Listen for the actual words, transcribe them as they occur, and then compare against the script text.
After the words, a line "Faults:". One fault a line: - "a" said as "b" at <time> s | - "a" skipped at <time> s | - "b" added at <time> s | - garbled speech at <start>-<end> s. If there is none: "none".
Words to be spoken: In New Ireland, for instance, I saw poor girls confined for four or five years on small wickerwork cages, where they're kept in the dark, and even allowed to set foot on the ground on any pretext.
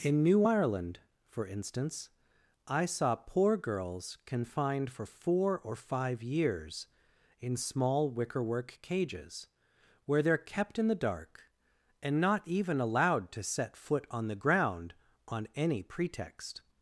In New Ireland, for instance, I saw poor girls confined for four or five years in small wickerwork cages, where they're kept in the dark, and not even allowed to set foot on the ground on any pretext.
Faults:
- "on" said as "in" at 7.4 s
- "not" added at 12.2 s